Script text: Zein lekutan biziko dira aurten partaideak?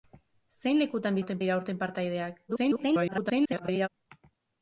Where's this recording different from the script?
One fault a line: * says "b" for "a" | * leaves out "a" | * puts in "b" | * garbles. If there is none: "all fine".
* says "aurten" for "biziko"
* garbles